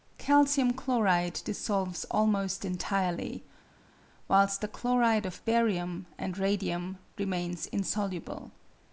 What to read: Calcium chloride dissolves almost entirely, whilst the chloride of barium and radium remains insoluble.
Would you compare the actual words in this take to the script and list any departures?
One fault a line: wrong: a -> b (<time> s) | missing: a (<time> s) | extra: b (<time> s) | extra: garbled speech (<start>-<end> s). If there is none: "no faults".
no faults